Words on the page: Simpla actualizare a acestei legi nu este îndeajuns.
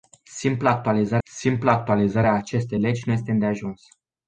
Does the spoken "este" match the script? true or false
true